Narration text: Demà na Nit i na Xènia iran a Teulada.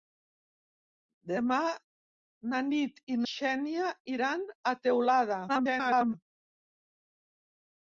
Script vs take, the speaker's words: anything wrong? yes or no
yes